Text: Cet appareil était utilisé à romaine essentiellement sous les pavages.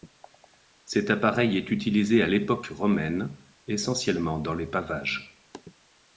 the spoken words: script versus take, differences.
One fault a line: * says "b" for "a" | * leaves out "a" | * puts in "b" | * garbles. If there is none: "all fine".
* says "est" for "était"
* puts in "l'époque"
* says "dans" for "sous"